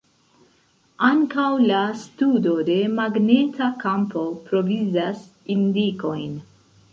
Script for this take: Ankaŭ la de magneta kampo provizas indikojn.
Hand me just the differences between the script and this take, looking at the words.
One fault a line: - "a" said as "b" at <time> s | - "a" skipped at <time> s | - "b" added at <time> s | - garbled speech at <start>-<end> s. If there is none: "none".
- "studo" added at 2.0 s